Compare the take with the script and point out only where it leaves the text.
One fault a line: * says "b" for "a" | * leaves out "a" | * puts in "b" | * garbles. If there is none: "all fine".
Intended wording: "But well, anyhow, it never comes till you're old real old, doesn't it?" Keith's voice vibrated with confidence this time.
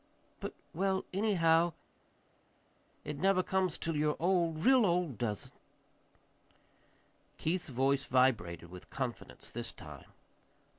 * says "does" for "doesn't"